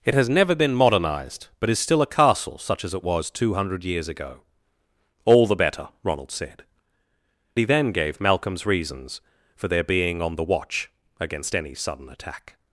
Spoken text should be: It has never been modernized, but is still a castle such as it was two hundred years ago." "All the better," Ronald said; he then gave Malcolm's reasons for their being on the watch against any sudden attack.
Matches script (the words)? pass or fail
pass